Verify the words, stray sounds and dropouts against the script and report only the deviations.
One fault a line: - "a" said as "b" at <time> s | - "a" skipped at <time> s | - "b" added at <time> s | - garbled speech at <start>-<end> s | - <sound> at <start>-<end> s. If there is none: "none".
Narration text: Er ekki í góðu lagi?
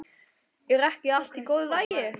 - "allt" added at 1.2 s
- dropout at 1.8-1.9 s